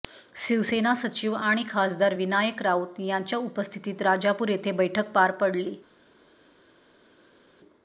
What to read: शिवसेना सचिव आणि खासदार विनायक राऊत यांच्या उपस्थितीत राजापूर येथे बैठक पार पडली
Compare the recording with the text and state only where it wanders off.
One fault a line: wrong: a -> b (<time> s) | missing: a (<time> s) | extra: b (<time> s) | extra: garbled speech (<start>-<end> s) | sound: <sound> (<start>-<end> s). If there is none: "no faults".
no faults